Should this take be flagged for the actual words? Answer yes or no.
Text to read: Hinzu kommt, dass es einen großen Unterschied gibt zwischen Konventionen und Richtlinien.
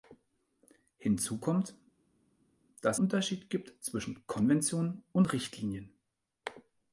yes